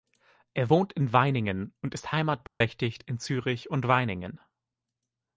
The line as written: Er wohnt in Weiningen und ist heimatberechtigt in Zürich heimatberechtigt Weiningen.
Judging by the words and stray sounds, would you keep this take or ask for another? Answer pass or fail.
fail